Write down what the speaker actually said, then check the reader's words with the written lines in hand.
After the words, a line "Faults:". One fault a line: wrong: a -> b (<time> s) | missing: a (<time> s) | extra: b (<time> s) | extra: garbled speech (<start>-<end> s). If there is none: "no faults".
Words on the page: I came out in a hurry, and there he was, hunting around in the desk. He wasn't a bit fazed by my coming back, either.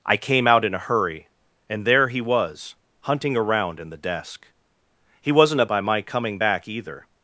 I came out in a hurry, and there he was, hunting around in the desk. He wasn't a by my coming back, either.
Faults:
missing: bit fazed (5.7 s)